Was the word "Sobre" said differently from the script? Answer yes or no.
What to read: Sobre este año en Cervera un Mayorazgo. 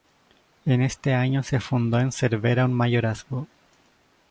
yes